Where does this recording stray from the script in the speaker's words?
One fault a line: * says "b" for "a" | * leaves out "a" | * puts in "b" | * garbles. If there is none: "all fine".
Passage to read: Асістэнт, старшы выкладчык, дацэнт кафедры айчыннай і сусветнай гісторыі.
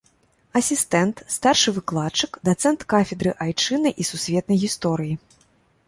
all fine